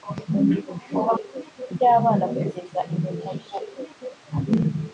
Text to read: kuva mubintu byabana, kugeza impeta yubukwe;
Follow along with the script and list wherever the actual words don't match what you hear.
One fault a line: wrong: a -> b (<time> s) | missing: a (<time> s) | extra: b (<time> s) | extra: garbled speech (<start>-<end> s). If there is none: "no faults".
wrong: mubintu -> yubukwe (1.2 s)